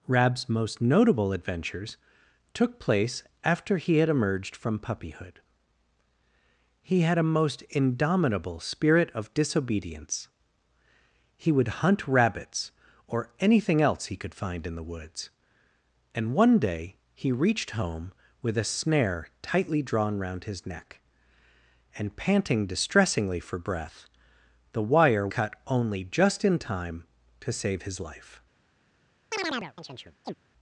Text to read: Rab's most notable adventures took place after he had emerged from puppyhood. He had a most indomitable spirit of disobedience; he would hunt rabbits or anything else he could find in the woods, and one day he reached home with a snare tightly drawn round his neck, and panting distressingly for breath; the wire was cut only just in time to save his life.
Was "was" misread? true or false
true